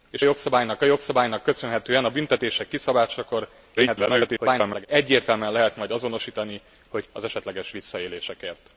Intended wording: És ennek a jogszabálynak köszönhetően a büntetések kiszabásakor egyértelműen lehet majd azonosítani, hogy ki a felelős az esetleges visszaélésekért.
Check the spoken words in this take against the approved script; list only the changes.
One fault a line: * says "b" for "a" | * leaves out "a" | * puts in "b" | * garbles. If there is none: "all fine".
* says "jogszabálynak" for "ennek"
* garbles
* leaves out "ki a felelős"